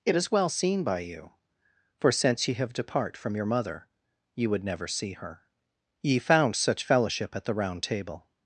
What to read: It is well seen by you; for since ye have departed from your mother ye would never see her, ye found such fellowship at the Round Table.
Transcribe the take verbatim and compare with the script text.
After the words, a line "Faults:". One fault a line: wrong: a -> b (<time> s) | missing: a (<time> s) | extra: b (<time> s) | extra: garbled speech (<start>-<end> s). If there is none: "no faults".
It is well seen by you; for since ye have depart from your mother ye would never see her, ye found such fellowship at the Round Table.
Faults:
wrong: departed -> depart (2.7 s)